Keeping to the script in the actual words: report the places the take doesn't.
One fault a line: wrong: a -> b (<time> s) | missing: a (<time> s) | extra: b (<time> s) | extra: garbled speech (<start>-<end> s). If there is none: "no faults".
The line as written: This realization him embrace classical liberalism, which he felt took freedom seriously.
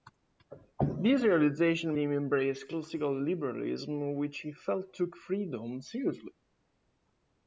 no faults